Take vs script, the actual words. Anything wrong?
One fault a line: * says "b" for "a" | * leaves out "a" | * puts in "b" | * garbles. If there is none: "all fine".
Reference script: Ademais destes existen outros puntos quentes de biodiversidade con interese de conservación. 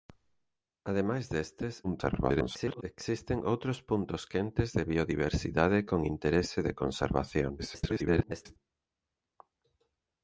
* garbles
* garbles